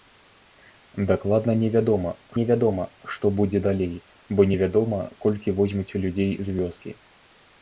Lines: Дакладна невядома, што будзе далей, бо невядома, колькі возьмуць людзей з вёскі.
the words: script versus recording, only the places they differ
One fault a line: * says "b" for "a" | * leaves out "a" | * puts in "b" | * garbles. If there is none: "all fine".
* puts in "невядома"